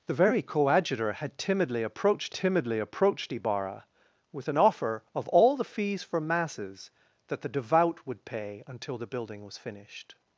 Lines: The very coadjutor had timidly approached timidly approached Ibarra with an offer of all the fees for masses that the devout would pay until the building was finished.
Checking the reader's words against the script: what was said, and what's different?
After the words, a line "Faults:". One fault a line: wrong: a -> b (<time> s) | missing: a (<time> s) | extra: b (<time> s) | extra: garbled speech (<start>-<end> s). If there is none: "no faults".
The very coadjutor had timidly approached timidly approached Ibarra with an offer of all the fees for masses that the devout would pay until the building was finished.
Faults:
no faults